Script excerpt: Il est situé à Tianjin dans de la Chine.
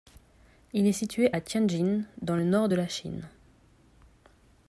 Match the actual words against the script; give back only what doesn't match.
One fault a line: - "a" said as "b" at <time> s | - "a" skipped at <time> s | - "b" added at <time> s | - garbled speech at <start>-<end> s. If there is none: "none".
- "le nord" added at 2.3 s